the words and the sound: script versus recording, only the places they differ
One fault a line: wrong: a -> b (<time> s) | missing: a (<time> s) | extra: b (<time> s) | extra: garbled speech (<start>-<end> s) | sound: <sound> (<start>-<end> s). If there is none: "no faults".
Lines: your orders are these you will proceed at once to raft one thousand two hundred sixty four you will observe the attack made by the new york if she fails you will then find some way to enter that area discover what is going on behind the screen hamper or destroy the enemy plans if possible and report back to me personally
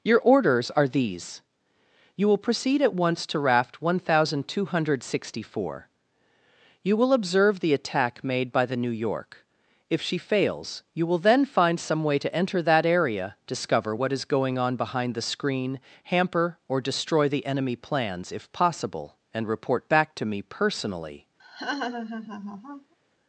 sound: laugh (21.4-22.9 s)